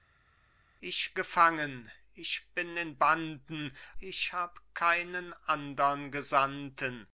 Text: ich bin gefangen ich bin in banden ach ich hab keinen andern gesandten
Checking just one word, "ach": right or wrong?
wrong